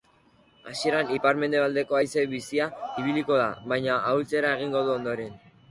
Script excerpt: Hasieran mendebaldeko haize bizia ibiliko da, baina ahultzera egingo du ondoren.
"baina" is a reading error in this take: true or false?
false